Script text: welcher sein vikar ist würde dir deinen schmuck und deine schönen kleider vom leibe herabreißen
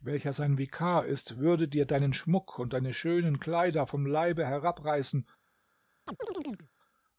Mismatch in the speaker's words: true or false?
false